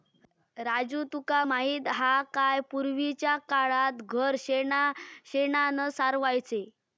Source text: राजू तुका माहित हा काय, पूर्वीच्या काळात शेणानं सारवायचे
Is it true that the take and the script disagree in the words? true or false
true